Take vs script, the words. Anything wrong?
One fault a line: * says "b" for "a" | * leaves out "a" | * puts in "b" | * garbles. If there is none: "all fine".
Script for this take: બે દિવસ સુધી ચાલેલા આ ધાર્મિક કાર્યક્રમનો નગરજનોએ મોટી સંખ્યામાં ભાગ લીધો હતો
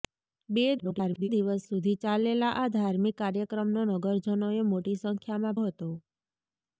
* garbles
* leaves out "ભાગ લીધો"